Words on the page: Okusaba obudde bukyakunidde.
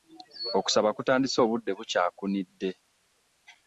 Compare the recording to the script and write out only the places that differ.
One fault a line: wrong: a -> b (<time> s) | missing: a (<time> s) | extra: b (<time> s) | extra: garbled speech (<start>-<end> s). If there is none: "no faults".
extra: kutandise (1.0 s)